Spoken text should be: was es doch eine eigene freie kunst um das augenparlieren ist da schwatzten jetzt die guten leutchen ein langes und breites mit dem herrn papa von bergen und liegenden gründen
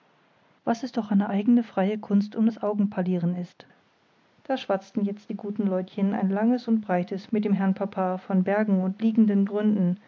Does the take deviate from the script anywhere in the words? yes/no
no